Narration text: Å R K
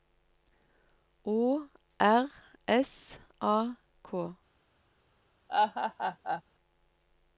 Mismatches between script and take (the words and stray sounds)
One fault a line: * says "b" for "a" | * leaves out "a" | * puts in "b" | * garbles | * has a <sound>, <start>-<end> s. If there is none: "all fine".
* puts in "S A"
* has a laugh, 5.5-6.4 s